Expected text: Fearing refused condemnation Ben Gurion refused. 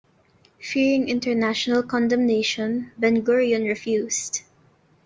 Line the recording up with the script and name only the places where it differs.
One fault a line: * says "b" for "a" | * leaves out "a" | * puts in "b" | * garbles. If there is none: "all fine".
* says "international" for "refused"